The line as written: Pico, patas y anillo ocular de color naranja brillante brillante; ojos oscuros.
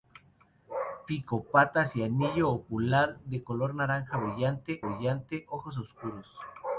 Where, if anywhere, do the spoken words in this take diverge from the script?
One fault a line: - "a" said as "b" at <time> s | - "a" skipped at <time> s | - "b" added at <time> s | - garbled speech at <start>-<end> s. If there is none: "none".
none